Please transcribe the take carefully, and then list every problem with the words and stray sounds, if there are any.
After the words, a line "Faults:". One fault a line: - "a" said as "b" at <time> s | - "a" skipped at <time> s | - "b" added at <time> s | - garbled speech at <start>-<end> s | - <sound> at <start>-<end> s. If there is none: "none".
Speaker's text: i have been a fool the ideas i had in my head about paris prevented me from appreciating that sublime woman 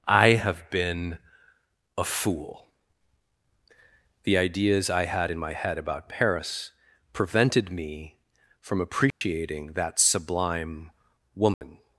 i have been a fool the ideas i had in my head about paris prevented me from appreciating that sublime woman
Faults:
- dropout at 9.1-9.2 s
- dropout at 11.5-11.6 s